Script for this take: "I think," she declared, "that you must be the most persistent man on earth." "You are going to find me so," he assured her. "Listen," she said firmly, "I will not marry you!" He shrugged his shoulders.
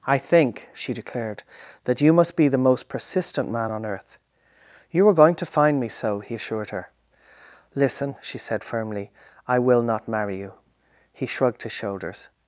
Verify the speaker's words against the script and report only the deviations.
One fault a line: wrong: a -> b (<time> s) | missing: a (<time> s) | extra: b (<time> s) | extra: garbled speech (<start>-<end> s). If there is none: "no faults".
no faults